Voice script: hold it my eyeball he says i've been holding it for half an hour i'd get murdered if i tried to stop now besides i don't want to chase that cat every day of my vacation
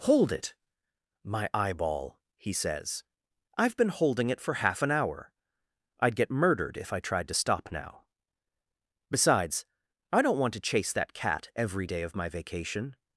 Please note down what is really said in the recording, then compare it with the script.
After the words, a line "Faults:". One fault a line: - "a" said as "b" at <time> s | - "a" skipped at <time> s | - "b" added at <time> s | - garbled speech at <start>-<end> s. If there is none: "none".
hold it my eyeball he says i've been holding it for half an hour i'd get murdered if i tried to stop now besides i don't want to chase that cat every day of my vacation
Faults:
none